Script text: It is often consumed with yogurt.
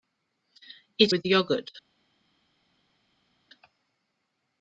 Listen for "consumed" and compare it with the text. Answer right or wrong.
wrong